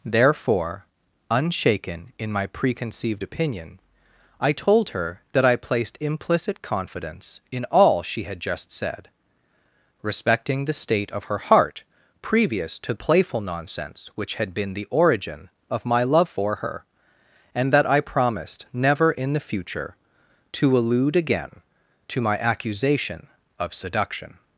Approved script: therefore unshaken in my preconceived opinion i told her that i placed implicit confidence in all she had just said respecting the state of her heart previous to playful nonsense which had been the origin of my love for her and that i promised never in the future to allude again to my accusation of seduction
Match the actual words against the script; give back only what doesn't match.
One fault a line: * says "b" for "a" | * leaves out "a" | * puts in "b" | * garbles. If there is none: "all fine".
all fine